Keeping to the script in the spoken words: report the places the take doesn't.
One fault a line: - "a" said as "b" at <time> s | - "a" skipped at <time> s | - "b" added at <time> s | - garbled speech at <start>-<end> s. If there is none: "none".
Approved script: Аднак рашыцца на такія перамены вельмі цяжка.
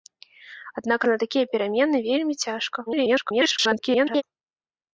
- "рашыцца" skipped at 1.1 s
- garbled speech at 2.9-4.2 s